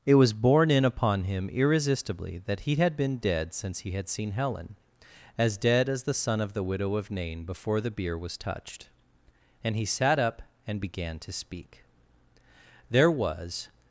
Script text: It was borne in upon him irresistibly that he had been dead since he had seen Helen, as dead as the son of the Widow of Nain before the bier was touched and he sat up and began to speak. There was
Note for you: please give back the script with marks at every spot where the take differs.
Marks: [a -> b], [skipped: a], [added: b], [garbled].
It was borne in upon him irresistibly that he had been dead since he had seen Helen, as dead as the son of the Widow of Nain before the bier was touched and he sat up and began to speak. There was